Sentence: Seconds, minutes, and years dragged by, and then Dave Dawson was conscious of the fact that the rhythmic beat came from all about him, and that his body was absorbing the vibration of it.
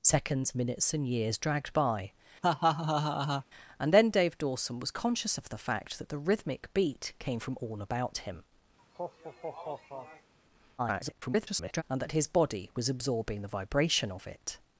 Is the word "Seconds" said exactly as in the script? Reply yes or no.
yes